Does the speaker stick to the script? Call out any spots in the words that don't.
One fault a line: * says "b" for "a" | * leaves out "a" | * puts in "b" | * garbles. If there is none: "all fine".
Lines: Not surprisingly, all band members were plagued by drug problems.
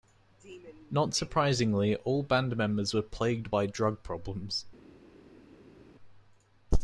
all fine